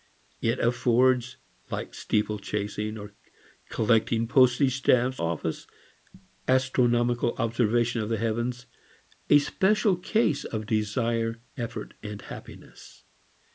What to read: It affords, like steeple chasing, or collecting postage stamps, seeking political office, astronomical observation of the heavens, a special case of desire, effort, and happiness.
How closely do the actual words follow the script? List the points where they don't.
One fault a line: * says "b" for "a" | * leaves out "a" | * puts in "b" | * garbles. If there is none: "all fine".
* leaves out "seeking political"